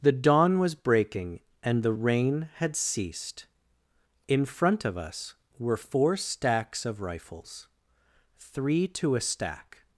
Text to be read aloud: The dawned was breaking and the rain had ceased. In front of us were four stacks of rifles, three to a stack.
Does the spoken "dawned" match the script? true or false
false